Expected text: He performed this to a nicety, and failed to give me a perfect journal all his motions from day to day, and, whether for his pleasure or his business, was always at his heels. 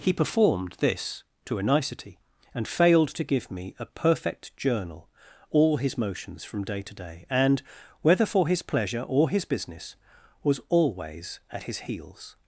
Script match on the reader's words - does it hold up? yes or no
yes